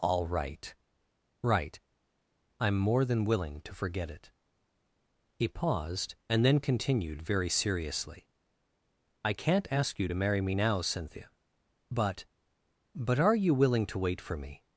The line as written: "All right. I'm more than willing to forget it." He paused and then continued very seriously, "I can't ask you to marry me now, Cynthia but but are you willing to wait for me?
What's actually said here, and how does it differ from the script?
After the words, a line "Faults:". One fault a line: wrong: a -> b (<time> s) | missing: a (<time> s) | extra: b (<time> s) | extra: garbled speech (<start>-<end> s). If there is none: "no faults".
"All right right. I'm more than willing to forget it." He paused and then continued very seriously, "I can't ask you to marry me now, Cynthia but but are you willing to wait for me?
Faults:
extra: right (1.4 s)